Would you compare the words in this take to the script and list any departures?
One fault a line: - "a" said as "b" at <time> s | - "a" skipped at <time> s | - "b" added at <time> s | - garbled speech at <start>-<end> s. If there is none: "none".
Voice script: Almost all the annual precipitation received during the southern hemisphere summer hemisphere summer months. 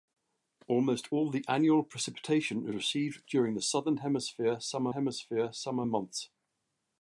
none